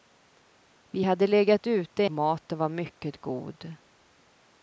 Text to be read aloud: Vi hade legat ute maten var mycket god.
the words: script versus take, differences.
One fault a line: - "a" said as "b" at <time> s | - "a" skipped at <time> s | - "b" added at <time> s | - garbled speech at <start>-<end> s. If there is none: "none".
none